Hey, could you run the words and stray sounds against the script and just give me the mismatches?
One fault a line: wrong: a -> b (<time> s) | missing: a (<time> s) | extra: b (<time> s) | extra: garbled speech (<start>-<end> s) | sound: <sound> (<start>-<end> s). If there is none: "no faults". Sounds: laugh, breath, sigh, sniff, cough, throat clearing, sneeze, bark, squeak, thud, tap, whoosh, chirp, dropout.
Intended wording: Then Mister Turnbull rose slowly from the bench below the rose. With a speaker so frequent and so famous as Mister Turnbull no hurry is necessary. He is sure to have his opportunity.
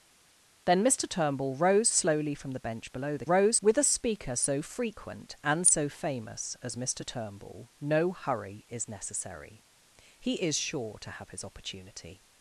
no faults